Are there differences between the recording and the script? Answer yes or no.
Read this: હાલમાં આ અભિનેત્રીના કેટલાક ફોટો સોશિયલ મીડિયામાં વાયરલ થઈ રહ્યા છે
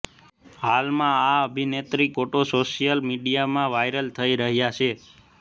yes